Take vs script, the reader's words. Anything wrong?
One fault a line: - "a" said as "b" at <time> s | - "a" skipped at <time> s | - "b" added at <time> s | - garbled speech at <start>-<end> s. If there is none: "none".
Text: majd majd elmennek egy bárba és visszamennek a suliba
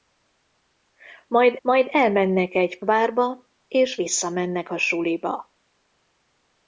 none